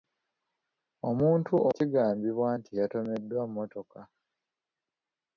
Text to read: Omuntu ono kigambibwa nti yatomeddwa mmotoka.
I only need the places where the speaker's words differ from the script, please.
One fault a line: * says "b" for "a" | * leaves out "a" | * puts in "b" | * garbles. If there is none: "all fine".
* leaves out "ono"